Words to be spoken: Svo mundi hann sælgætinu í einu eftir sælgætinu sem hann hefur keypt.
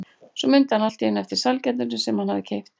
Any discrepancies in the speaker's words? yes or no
yes